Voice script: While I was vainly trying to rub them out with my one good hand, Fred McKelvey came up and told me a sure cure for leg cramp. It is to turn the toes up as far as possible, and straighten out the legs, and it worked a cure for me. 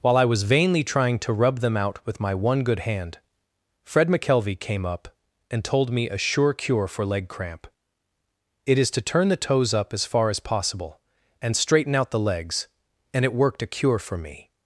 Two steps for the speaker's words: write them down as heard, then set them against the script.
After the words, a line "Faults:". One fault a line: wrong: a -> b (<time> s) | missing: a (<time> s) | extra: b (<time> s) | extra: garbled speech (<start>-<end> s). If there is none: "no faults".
While I was vainly trying to rub them out with my one good hand, Fred McKelvey came up and told me a sure cure for leg cramp. It is to turn the toes up as far as possible, and straighten out the legs, and it worked a cure for me.
Faults:
no faults